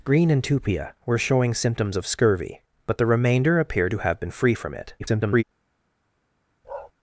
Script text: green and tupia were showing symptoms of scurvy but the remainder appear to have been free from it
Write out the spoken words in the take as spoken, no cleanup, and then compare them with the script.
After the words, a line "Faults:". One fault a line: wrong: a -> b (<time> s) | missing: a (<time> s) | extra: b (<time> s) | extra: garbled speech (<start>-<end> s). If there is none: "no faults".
green and tupia were showing symptoms of scurvy but the remainder appear to have been free from it [garbled]
Faults:
extra: garbled speech (5.0-5.4 s)